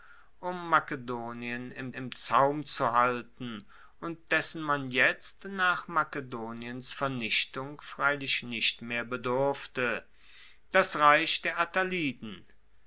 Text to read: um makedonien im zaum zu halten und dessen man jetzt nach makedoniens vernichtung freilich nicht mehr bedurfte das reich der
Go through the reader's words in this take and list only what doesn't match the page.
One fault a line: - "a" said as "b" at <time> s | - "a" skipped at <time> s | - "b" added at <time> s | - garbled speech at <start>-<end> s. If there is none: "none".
- "im" added at 1.9 s